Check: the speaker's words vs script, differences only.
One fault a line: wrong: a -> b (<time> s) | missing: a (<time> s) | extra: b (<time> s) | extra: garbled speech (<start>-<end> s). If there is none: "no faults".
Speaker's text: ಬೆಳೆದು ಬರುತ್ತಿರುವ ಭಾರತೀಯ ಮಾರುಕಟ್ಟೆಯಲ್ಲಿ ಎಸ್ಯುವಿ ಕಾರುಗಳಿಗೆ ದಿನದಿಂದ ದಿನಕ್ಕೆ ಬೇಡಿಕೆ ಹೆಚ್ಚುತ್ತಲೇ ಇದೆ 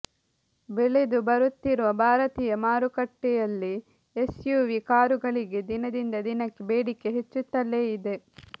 no faults